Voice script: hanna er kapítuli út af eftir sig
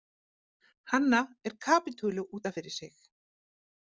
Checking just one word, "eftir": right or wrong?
wrong